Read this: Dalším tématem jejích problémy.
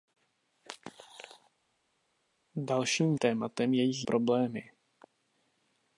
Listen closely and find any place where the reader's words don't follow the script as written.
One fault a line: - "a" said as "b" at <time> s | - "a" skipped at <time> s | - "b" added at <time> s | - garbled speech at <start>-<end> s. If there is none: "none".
none